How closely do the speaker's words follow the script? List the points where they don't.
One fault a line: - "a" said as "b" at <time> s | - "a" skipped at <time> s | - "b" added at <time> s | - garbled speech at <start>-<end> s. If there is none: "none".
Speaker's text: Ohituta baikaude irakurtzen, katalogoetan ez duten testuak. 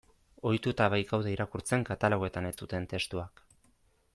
none